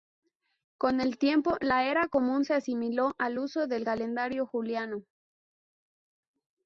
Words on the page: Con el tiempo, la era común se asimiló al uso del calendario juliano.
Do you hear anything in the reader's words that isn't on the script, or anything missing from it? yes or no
no